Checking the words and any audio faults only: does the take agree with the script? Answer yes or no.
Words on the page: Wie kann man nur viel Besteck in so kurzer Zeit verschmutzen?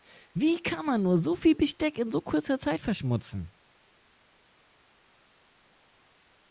no